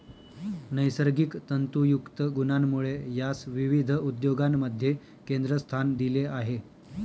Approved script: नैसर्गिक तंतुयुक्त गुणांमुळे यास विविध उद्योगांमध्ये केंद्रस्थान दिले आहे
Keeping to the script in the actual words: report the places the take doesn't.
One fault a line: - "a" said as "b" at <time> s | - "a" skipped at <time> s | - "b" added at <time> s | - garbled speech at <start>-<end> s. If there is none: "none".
none